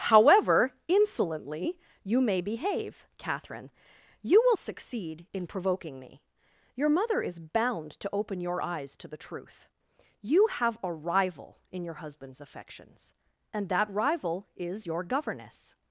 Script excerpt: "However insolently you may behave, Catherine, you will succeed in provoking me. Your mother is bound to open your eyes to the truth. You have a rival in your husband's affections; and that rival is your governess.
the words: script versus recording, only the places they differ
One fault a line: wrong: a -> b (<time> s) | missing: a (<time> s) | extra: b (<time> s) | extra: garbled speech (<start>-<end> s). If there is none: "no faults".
no faults